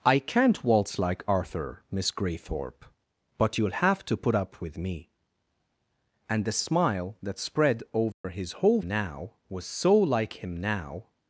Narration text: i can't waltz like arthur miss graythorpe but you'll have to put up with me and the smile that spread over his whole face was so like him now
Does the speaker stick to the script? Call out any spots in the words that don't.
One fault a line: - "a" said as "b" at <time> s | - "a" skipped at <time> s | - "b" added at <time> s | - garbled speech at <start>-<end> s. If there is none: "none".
- "face" said as "now" at 8.8 s